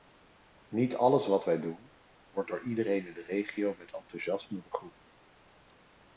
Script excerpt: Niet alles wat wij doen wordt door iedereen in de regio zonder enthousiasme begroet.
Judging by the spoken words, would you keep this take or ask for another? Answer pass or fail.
fail